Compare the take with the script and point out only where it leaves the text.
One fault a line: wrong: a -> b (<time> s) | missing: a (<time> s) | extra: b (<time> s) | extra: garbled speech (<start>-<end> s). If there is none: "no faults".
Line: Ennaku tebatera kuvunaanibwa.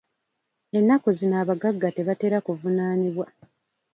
extra: zino abagagga (1.2 s)